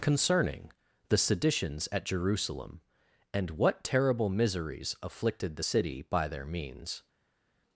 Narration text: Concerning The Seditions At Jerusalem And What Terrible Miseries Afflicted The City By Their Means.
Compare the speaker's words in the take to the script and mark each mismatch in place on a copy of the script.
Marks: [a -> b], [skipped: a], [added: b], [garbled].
Concerning The Seditions At Jerusalem And What Terrible Miseries Afflicted The City By Their Means.